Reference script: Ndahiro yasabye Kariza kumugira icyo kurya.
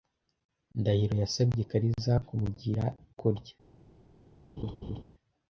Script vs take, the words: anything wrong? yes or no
yes